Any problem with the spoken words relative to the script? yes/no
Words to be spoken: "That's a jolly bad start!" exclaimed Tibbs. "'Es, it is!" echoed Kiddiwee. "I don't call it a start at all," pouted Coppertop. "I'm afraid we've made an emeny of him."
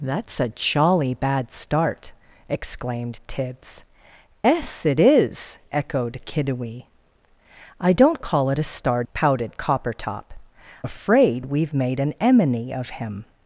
yes